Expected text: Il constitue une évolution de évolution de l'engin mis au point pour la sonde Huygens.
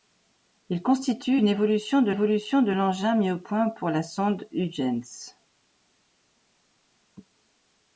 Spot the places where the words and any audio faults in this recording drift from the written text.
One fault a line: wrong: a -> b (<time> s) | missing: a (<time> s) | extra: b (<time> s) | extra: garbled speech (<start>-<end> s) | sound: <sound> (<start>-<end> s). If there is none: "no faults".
no faults